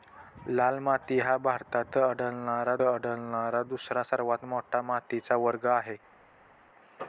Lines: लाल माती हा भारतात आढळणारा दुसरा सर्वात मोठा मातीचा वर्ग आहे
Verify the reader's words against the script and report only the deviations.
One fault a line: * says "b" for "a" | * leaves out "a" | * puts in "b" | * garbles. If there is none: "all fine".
* puts in "आढळणारा"